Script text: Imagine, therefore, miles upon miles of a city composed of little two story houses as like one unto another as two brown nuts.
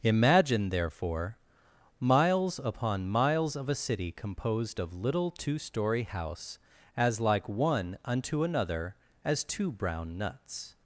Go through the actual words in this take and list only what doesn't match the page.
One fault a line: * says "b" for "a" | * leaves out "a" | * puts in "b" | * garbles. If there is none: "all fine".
* says "house" for "houses"